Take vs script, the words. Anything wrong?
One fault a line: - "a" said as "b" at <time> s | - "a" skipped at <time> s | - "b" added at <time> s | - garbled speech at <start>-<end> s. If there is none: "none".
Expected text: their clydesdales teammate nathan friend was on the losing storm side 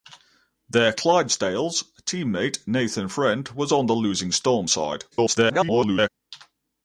- garbled speech at 5.1-6.1 s